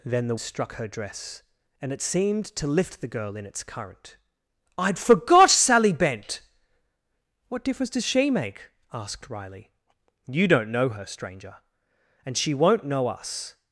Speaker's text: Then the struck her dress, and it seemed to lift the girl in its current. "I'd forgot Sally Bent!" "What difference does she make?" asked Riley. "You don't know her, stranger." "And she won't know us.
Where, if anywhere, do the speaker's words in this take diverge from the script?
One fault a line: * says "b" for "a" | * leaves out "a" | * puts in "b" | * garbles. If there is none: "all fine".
all fine